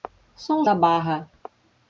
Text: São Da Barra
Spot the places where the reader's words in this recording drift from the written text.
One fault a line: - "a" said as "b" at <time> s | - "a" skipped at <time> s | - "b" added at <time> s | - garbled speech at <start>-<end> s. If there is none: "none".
none